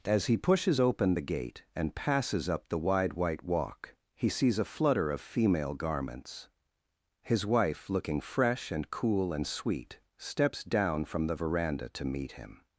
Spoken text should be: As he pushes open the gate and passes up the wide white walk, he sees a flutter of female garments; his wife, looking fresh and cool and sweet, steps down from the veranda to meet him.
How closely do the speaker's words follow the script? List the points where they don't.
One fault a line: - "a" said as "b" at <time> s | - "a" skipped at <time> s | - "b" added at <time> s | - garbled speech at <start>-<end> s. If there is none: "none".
none